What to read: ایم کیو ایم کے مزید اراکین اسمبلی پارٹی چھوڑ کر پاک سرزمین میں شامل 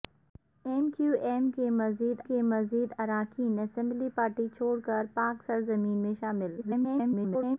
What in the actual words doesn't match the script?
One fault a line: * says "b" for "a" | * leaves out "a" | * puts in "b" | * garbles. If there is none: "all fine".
* puts in "کے مزید"
* garbles